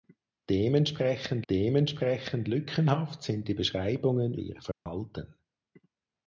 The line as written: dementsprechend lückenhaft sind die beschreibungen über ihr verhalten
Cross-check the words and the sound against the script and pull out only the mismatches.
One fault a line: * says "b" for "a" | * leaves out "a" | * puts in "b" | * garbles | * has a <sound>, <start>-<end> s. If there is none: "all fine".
* puts in "dementsprechend"
* leaves out "über"
* has a dropout, 4.7-4.9 s